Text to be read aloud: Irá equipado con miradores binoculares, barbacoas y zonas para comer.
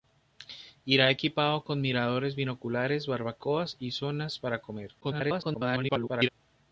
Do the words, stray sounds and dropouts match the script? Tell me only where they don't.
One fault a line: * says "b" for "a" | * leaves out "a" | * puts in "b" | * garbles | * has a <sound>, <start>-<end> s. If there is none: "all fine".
* garbles